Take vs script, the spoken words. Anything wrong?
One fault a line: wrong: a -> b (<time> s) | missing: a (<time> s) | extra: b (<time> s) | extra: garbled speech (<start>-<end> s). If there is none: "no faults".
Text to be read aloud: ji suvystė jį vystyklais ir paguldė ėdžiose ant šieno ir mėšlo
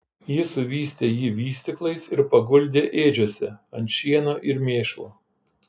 no faults